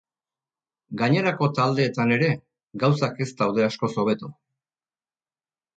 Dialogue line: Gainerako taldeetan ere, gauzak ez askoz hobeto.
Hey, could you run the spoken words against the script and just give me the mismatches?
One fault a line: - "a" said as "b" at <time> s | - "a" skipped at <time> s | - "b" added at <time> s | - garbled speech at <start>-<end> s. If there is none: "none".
- "daude" added at 3.4 s